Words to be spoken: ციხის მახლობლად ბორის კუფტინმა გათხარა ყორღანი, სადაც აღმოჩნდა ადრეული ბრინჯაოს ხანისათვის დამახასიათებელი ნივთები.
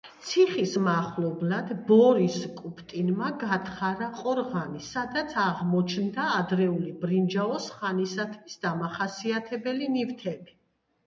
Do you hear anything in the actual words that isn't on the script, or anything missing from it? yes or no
no